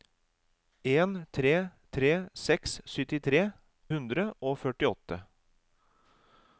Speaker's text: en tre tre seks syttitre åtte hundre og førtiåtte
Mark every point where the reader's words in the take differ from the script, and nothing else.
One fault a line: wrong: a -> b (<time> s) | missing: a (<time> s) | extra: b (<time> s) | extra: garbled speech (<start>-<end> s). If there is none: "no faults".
missing: åtte (3.4 s)